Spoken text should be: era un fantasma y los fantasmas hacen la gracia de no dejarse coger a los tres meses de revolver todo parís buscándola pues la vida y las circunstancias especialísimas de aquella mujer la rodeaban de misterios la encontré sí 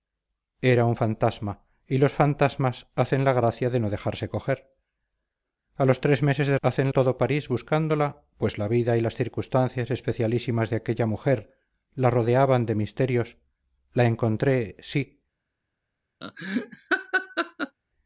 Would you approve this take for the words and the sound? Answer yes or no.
no